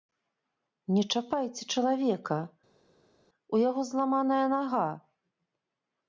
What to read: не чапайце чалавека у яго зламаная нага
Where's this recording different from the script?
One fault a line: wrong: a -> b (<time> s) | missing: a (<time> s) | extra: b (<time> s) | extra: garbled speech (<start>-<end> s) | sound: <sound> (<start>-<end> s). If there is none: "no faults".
no faults